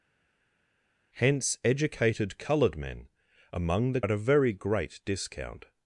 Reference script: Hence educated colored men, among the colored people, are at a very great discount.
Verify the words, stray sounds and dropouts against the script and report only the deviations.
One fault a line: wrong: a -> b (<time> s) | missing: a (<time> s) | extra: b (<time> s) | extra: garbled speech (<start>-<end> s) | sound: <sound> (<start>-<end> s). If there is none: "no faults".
missing: colored people are (4.0 s)